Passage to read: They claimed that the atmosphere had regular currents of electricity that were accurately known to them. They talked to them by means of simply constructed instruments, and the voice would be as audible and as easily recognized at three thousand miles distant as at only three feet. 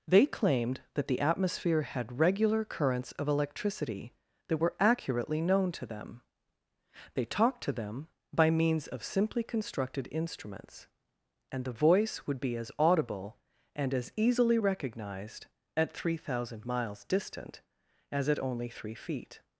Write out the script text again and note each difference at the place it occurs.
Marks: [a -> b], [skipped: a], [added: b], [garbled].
They claimed that the atmosphere had regular currents of electricity that were accurately known to them. They talked to them by means of simply constructed instruments, and the voice would be as audible and as easily recognized at three thousand miles distant as at only three feet.